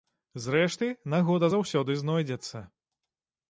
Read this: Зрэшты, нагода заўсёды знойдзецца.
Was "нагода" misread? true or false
false